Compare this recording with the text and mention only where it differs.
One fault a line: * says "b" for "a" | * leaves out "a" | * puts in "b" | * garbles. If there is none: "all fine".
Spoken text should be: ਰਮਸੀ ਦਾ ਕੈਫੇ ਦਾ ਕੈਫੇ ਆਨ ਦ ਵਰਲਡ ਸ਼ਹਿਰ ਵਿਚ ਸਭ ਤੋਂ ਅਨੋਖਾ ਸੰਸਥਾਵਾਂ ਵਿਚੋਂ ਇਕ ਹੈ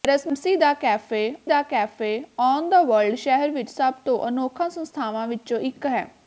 all fine